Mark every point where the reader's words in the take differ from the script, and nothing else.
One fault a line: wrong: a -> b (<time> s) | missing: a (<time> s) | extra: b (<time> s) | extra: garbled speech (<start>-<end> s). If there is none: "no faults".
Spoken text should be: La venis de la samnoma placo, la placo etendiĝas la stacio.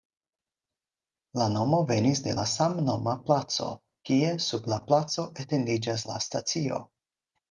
extra: nomo (1.6 s)
extra: kie sub (4.1 s)